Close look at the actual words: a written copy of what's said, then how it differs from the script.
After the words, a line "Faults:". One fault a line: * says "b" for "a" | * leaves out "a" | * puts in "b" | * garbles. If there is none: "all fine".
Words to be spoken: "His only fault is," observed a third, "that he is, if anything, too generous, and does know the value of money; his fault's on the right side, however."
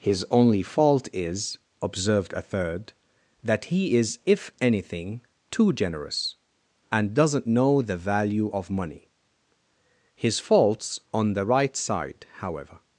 "His only fault is," observed a third, "that he is, if anything, too generous, and doesn't know the value of money; his fault's on the right side, however."
Faults:
* says "doesn't" for "does"